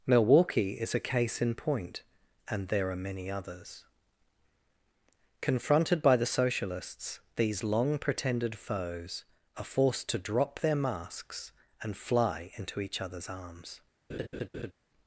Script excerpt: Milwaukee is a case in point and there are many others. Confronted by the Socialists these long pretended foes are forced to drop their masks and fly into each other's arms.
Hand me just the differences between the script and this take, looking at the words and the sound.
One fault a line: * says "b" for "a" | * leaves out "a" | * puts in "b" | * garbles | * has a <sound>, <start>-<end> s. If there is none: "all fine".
* has a laugh, 14.1-14.7 s